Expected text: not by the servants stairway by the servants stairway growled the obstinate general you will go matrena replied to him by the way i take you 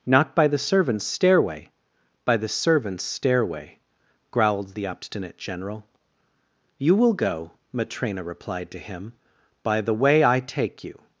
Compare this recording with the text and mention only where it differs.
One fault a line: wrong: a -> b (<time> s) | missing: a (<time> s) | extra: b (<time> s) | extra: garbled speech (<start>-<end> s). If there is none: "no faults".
no faults